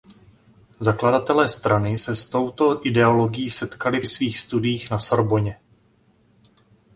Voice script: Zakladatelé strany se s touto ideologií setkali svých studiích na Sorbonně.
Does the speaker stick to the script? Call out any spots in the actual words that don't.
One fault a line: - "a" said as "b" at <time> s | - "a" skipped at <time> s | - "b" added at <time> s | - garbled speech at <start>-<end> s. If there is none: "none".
none